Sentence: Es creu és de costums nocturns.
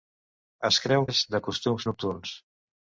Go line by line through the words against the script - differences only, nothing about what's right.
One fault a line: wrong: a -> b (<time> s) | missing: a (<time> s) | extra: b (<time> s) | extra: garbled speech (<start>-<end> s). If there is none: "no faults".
no faults